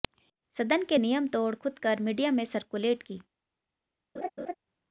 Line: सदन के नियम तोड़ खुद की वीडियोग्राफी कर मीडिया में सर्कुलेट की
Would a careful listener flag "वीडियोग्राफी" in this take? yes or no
yes